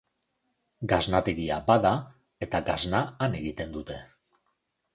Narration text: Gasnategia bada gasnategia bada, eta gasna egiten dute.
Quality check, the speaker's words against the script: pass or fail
fail